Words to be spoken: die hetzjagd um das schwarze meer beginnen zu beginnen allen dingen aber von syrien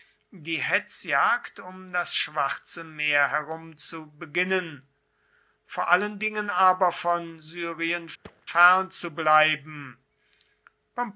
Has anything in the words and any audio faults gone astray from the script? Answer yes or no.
yes